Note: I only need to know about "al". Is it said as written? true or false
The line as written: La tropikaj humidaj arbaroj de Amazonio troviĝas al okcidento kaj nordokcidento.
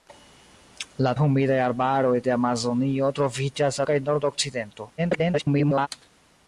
false